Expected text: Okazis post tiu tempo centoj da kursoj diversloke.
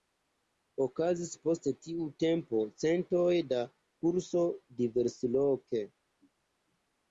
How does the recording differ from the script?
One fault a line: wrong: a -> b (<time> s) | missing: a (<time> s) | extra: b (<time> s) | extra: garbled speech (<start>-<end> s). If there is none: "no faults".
no faults